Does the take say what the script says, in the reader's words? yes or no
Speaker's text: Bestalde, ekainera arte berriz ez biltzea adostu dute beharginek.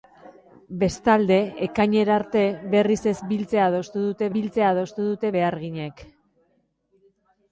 no